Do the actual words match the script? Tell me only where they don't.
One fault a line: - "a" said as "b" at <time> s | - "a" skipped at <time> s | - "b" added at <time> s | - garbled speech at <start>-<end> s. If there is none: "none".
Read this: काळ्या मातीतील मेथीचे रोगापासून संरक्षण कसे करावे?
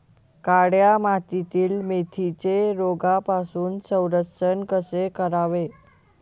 none